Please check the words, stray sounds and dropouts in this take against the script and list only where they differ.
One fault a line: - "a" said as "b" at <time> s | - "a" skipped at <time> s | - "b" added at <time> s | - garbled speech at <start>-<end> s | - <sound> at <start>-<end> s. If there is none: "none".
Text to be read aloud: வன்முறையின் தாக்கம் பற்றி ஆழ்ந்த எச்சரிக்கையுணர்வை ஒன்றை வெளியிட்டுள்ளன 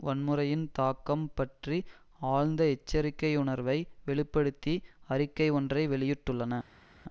- "வெளி படுத்தி அறிக்கை" added at 4.1 s